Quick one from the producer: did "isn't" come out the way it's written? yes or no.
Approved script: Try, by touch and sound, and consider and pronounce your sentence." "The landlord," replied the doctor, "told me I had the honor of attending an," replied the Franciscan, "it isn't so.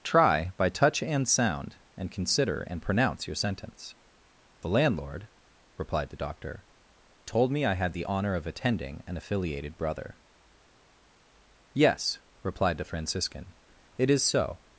no